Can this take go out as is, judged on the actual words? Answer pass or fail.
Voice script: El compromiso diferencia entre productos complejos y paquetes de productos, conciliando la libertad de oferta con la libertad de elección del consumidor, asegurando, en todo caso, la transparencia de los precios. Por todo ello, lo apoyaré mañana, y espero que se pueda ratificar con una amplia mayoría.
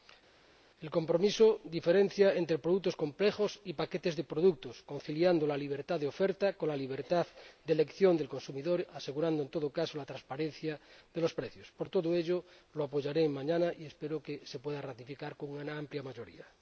pass